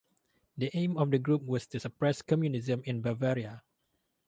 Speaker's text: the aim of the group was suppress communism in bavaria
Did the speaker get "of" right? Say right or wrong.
right